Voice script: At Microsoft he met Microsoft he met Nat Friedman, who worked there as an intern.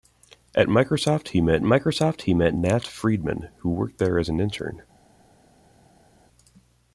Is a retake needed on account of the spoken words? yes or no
no